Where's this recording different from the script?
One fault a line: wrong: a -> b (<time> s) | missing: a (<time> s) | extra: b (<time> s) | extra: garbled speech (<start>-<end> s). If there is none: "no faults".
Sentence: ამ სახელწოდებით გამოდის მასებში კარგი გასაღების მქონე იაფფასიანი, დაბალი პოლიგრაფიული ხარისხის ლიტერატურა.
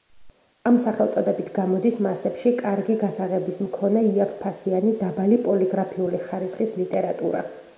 no faults